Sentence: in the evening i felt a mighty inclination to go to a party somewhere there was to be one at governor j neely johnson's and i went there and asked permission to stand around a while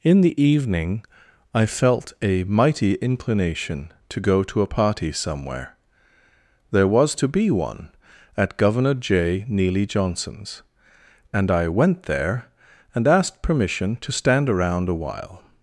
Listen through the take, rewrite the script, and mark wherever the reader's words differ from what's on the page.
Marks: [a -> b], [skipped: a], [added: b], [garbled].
in the evening i felt a mighty inclination to go to a party somewhere there was to be one at governor j neely johnson's and i went there and asked permission to stand around a while